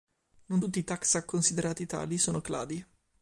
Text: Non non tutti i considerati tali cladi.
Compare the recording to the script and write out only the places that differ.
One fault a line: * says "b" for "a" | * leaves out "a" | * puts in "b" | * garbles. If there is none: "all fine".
* leaves out "non"
* puts in "taxa"
* puts in "sono"